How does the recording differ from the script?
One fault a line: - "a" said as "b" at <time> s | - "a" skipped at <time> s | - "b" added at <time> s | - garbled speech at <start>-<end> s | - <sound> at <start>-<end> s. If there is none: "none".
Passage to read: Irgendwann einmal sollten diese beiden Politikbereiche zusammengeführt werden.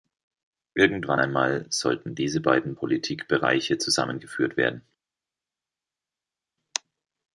none